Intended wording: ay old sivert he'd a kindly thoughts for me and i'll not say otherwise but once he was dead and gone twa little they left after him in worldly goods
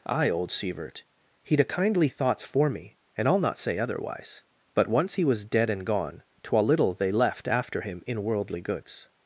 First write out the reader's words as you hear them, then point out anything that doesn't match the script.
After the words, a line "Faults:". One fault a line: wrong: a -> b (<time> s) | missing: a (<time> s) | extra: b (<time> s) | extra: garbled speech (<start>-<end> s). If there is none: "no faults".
ay old sivert he'd a kindly thoughts for me and i'll not say otherwise but once he was dead and gone twa little they left after him in worldly goods
Faults:
no faults